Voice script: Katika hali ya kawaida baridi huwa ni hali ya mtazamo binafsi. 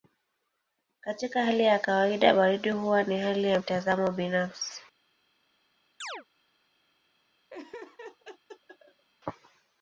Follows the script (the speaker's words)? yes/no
yes